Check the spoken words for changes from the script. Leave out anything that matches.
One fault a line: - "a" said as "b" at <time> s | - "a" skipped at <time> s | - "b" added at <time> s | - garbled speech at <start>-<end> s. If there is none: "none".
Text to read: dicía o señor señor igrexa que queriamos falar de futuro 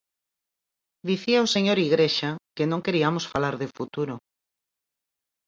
- "señor" skipped at 1.8 s
- "non" added at 2.7 s